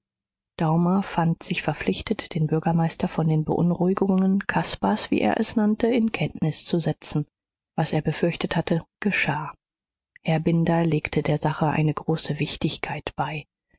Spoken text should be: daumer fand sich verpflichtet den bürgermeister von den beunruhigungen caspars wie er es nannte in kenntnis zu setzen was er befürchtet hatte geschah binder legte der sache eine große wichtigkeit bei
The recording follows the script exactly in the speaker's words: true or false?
false